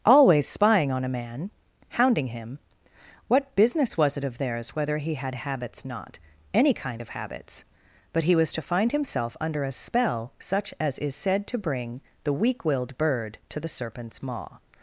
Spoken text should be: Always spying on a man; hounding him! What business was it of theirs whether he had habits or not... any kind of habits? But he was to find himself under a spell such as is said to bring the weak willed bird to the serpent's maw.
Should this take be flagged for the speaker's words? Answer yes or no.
yes